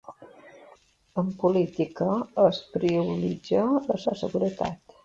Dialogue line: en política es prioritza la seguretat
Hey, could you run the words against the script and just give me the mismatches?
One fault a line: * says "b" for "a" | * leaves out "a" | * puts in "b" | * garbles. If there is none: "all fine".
* puts in "la"